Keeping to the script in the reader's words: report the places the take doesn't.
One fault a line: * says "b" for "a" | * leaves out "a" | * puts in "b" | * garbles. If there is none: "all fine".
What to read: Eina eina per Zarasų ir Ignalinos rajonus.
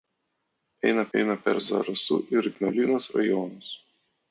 all fine